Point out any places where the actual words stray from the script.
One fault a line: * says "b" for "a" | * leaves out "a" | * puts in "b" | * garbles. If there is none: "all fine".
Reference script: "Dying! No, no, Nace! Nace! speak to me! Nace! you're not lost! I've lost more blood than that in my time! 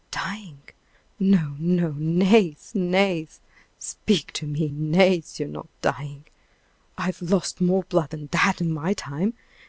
* says "dying" for "lost"